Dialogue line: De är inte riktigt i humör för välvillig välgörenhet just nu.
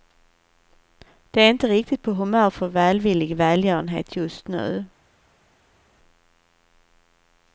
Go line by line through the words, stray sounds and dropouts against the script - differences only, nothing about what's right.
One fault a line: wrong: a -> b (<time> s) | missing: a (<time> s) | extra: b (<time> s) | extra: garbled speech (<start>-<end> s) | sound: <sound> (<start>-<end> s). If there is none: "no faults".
wrong: i -> på (2.0 s)